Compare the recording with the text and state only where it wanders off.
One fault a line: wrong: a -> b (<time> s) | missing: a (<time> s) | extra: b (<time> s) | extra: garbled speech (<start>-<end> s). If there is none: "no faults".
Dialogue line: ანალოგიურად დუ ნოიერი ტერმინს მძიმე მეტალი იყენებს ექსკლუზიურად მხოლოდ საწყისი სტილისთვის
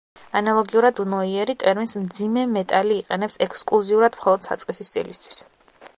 no faults